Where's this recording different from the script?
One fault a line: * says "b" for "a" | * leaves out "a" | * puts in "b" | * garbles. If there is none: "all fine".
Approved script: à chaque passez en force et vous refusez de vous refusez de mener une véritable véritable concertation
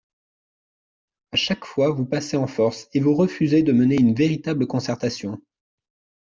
* puts in "fois vous"
* leaves out "vous refusez de"
* leaves out "véritable"